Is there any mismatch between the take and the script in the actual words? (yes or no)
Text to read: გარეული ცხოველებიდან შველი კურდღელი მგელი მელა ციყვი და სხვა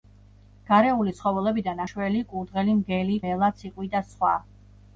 no